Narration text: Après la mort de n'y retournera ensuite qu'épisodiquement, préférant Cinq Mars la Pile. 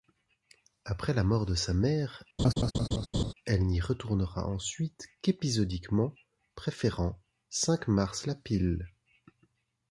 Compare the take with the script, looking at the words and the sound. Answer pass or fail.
fail